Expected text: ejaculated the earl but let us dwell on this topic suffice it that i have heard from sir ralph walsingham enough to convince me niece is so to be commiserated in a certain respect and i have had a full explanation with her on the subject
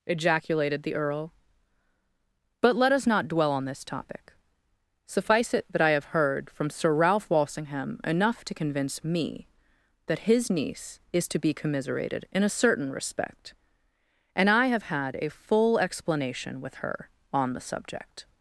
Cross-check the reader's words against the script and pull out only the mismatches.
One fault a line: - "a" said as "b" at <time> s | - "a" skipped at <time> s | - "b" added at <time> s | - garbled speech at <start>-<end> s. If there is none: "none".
- "not" added at 3.1 s
- "that his" added at 10.1 s
- "so" skipped at 11.3 s